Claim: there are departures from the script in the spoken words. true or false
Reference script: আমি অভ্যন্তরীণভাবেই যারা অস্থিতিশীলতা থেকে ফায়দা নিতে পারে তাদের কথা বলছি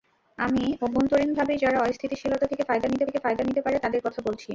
true